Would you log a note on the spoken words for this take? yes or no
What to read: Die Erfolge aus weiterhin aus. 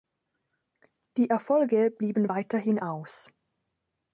yes